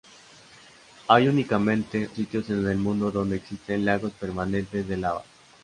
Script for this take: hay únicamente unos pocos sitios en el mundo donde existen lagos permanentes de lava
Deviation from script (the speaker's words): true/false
true